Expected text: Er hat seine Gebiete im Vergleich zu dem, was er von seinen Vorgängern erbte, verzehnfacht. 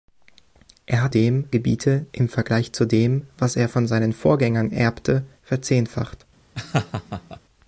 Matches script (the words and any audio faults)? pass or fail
fail